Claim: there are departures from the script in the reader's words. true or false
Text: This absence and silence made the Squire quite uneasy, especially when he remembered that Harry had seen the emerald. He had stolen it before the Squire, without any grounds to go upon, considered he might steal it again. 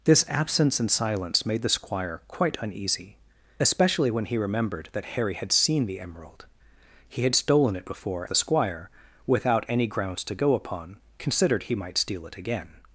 false